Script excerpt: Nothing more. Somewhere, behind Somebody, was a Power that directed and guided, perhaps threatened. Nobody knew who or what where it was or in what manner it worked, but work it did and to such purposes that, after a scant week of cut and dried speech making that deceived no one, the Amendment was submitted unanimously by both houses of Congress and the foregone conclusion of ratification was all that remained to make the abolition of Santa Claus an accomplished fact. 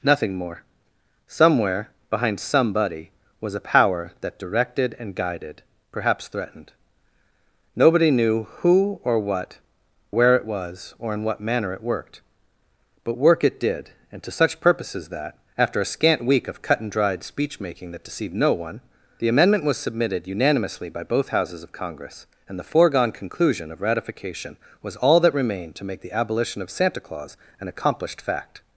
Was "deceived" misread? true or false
false